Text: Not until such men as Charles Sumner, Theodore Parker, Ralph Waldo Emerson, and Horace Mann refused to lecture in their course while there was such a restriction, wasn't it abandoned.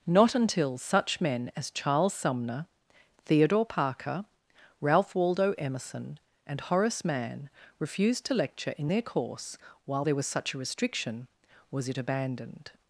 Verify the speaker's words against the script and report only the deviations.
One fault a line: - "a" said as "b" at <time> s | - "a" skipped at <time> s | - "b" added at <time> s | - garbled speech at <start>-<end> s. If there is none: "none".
- "wasn't" said as "was" at 11.7 s